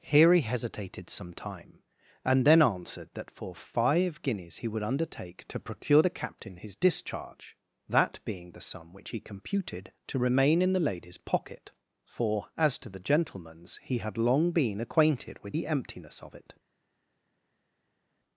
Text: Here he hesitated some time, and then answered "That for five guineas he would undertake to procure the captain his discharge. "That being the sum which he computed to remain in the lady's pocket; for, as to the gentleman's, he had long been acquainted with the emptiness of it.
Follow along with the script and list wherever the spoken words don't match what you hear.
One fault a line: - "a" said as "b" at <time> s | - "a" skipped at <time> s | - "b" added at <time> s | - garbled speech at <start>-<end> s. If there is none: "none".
none